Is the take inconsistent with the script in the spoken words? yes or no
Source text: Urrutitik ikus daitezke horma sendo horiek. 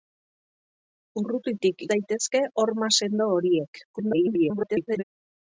yes